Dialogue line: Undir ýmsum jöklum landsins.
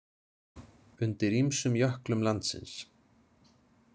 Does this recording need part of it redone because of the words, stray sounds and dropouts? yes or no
no